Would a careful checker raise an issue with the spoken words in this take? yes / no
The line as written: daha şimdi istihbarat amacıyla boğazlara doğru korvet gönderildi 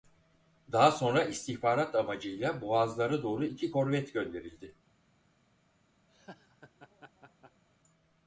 yes